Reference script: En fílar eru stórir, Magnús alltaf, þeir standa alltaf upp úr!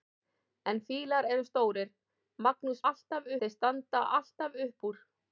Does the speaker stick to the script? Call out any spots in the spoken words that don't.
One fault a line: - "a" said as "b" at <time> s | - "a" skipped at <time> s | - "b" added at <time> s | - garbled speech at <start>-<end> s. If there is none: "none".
none